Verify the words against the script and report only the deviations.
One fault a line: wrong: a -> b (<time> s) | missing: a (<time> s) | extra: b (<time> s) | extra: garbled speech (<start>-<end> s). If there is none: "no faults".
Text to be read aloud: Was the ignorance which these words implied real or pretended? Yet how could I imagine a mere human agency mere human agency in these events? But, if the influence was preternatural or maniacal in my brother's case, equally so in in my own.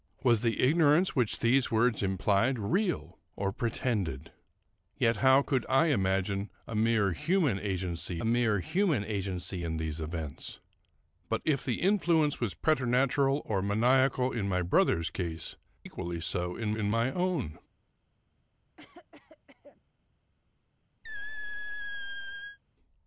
no faults